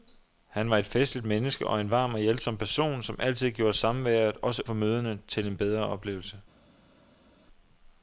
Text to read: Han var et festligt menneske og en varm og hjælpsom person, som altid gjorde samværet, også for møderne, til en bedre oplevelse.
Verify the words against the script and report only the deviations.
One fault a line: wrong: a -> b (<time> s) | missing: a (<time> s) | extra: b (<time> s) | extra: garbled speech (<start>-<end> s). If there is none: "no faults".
no faults